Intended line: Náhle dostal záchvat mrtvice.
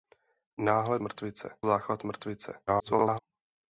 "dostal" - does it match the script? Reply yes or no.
no